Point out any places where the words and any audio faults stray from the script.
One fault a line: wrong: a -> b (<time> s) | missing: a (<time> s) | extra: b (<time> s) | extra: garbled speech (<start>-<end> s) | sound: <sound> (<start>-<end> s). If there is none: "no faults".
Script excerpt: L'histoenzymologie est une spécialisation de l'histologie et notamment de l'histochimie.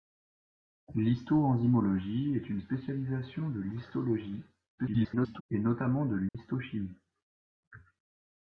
extra: garbled speech (4.8-5.4 s)
sound: dropout (6.3-6.3 s)